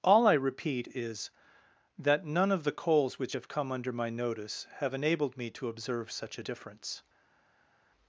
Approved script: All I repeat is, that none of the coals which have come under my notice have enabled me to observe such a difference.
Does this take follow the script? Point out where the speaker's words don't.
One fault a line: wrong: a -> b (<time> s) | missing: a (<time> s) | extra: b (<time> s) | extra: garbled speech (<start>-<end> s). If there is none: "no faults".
no faults